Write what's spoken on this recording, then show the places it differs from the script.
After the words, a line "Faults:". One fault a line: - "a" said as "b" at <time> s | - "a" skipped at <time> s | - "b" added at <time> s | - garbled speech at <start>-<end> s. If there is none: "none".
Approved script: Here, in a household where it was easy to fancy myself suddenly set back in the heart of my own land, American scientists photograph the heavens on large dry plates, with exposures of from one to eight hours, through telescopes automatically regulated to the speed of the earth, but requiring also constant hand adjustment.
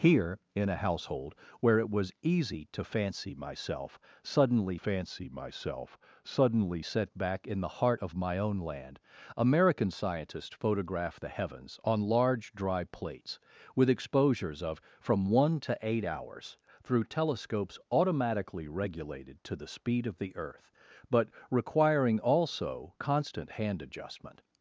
Here, in a household where it was easy to fancy myself suddenly fancy myself suddenly set back in the heart of my own land, American scientists photograph the heavens on large dry plates, with exposures of from one to eight hours, through telescopes automatically regulated to the speed of the earth, but requiring also constant hand adjustment.
Faults:
- "fancy myself suddenly" added at 4.7 s